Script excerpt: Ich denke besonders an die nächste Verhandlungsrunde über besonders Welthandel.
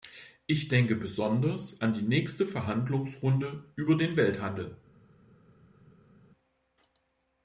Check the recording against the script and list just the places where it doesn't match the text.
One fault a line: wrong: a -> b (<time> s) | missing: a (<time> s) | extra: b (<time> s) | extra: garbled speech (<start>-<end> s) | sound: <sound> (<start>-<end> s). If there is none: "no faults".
wrong: besonders -> den (4.0 s)